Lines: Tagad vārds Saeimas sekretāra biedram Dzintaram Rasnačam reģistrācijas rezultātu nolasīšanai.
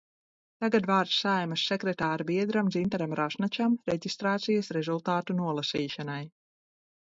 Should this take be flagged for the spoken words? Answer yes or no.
no